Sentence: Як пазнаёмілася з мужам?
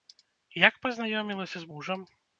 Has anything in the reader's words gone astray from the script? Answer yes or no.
no